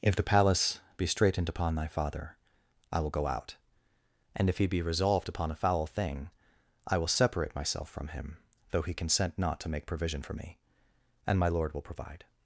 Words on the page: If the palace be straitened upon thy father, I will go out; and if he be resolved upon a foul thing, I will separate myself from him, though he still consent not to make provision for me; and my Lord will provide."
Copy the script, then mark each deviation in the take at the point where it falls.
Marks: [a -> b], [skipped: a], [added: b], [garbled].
If the palace be straitened upon thy father, I will go out; and if he be resolved upon a foul thing, I will separate myself from him, though he [skipped: still] consent not to make provision for me; and my Lord will provide."